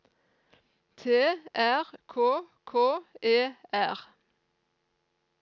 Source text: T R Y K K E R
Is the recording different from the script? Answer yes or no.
yes